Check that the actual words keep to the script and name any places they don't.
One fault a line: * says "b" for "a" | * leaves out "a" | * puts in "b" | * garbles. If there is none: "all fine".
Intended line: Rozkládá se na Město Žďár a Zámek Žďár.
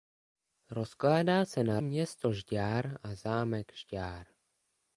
all fine